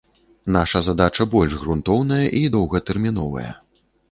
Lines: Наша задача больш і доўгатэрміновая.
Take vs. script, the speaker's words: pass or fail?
fail